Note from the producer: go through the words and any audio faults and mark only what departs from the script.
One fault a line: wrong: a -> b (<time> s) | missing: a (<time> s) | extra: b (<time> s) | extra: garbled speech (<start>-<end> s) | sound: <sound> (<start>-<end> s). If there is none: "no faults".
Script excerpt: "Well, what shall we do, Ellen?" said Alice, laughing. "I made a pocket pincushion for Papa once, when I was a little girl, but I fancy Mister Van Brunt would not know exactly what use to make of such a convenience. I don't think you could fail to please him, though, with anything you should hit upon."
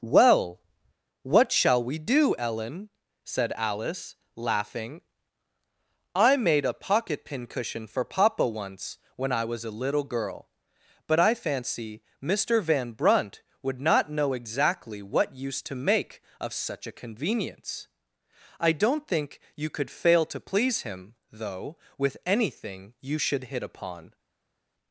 no faults